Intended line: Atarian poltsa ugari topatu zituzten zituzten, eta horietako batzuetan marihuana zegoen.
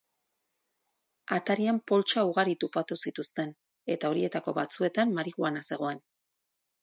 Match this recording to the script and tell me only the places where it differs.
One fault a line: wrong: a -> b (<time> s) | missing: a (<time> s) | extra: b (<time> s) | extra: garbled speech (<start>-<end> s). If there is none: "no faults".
missing: zituzten (3.5 s)